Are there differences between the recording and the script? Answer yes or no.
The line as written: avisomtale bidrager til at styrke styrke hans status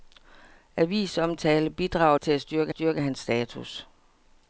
no